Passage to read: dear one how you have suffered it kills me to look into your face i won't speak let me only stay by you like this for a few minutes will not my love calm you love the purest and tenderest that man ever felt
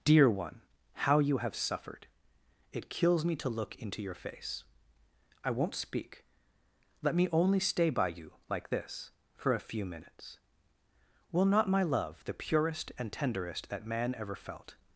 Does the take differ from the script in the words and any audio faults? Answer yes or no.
yes